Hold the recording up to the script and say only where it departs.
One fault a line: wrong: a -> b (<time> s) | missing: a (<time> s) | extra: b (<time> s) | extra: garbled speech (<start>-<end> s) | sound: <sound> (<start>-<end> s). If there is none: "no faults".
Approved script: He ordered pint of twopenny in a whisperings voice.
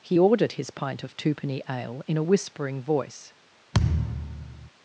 extra: his (0.5 s)
extra: ale (1.7 s)
wrong: whisperings -> whispering (2.2 s)
sound: thud (3.7-4.7 s)